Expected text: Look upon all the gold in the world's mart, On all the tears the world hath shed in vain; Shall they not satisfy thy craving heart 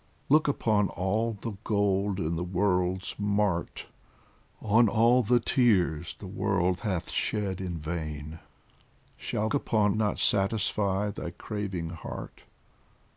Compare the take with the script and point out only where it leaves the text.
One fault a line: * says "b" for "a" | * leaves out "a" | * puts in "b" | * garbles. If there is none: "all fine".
* says "upon" for "they"